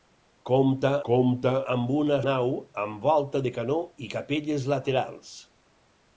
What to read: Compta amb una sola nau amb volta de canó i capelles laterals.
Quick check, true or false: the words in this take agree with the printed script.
false